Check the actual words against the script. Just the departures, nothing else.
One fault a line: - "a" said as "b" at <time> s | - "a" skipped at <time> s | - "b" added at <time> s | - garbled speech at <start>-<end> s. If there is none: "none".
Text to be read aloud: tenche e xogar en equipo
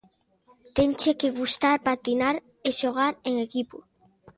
- "que gustar patinar" added at 1.2 s